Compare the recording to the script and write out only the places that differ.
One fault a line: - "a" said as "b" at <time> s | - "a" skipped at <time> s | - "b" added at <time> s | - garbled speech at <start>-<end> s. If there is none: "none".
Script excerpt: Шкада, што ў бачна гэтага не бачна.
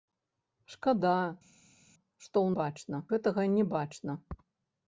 none